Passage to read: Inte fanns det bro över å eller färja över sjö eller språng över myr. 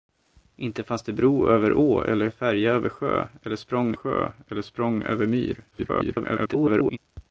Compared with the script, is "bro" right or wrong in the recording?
right